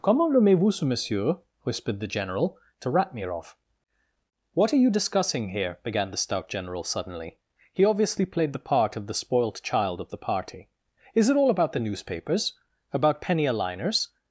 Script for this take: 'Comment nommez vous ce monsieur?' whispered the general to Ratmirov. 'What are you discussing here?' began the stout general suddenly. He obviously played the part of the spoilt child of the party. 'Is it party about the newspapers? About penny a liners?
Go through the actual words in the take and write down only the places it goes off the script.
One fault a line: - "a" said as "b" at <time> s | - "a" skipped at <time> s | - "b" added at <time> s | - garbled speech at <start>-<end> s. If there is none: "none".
- "party" said as "all" at 11.4 s